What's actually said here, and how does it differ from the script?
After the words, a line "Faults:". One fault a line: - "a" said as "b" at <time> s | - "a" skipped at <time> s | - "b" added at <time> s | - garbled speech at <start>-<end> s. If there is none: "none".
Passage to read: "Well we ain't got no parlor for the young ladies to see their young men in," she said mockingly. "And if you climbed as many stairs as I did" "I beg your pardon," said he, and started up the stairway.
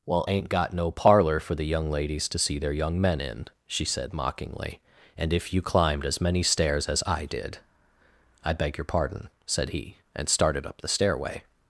"Well ain't got no parlor for the young ladies to see their young men in," she said mockingly. "And if you climbed as many stairs as I did" "I beg your pardon," said he, and started up the stairway.
Faults:
- "we" skipped at 0.2 s